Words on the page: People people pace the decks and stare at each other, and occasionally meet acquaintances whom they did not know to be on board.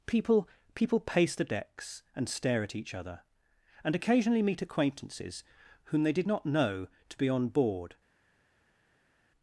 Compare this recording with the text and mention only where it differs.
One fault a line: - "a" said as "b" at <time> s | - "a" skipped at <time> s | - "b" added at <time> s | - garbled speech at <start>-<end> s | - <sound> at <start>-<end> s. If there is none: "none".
none